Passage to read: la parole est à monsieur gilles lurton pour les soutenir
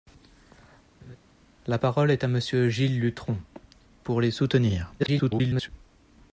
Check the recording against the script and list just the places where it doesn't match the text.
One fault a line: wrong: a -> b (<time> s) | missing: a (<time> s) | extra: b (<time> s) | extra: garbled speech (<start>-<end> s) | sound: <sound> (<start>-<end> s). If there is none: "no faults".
sound: laugh (1.0-1.2 s)
extra: garbled speech (5.0-5.7 s)